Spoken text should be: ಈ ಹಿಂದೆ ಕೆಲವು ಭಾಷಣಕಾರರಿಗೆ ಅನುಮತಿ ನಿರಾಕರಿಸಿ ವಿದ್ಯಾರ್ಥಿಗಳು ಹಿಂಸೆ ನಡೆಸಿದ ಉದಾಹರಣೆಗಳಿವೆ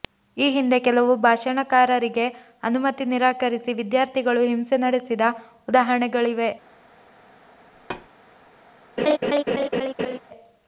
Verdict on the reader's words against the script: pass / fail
pass